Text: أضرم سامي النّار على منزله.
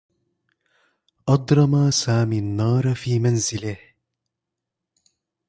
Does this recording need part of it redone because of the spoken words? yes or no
yes